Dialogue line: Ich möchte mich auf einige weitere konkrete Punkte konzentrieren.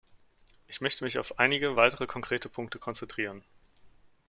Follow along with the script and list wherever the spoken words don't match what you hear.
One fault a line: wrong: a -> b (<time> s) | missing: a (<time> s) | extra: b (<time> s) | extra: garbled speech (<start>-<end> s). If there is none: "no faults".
no faults